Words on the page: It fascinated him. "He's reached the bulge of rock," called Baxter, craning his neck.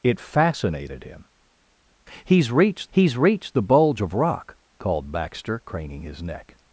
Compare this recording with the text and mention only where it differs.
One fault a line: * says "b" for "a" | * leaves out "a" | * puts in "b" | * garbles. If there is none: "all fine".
* puts in "he's reached"